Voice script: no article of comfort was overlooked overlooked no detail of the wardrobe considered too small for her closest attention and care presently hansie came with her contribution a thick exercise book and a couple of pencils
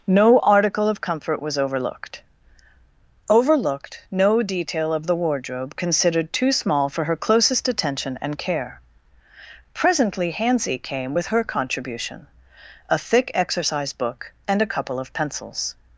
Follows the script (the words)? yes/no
yes